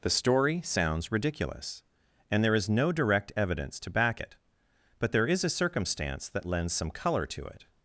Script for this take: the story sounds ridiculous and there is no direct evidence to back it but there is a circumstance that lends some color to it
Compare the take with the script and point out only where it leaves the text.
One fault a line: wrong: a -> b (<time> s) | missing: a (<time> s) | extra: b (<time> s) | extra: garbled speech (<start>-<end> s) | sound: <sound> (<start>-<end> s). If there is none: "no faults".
no faults